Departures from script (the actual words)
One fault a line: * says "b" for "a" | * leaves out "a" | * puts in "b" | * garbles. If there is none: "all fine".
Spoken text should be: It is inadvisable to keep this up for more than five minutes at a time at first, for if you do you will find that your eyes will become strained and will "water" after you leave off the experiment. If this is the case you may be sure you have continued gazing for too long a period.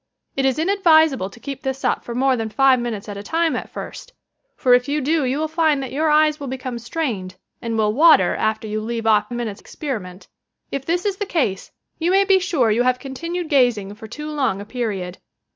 * says "minutes" for "the"